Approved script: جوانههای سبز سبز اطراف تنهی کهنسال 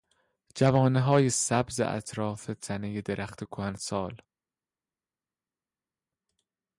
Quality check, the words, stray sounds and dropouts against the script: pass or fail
fail